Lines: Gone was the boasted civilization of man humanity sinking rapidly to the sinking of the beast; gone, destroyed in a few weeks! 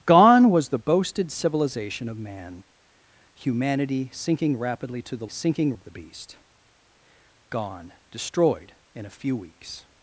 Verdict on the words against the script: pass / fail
pass